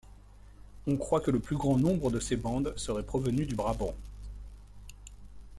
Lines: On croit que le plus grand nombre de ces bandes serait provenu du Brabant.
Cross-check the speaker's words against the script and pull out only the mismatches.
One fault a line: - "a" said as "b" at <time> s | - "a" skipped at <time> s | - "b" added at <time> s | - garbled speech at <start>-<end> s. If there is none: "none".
none